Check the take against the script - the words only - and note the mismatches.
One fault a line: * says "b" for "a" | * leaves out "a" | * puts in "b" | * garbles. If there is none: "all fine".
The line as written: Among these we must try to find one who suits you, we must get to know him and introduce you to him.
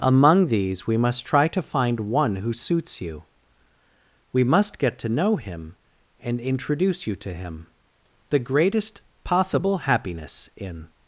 * puts in "The greatest possible happiness in"